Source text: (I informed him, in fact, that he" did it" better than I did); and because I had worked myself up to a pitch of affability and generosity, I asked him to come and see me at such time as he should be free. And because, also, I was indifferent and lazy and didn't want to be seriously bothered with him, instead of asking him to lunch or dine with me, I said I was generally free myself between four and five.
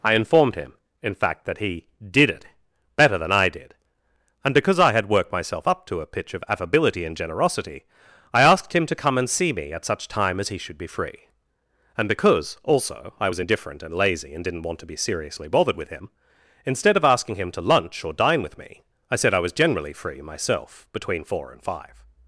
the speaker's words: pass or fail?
pass